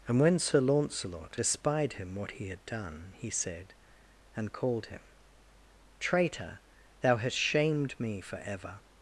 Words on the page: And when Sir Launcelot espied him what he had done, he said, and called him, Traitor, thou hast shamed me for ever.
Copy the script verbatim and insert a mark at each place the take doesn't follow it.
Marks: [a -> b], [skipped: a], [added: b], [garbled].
And when Sir Launcelot espied him what he had done, he said, and called him, Traitor, thou hast shamed me for ever.